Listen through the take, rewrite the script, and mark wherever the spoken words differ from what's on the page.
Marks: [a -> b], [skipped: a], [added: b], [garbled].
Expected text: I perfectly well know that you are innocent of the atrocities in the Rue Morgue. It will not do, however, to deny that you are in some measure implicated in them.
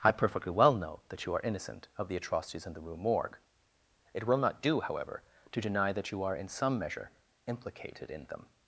I perfectly well know that you are innocent of the atrocities in the Rue Morgue. It will not do, however, to deny that you are in some measure implicated in them.